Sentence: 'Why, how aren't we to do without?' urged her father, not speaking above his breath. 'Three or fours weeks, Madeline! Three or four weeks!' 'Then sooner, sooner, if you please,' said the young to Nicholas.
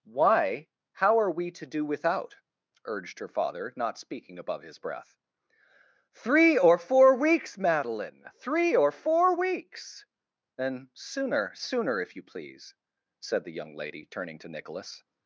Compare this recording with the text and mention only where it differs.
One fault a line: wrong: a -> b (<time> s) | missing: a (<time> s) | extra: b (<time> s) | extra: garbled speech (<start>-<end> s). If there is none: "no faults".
wrong: aren't -> are (1.2 s)
wrong: fours -> four (6.8 s)
extra: lady turning (13.7 s)